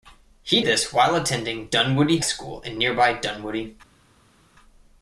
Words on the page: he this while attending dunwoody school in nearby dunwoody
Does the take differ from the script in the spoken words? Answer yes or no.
no